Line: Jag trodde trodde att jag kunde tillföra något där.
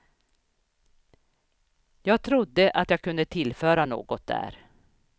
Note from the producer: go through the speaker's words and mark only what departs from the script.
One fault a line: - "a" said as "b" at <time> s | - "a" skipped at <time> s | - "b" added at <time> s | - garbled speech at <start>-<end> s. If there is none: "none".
- "trodde" skipped at 2.7 s